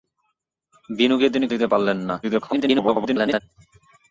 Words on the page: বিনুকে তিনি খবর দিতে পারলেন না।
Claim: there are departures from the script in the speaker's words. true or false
true